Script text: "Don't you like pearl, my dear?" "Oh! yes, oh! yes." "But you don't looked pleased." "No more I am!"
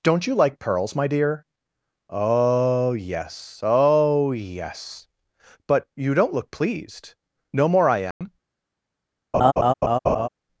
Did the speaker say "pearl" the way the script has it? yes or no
no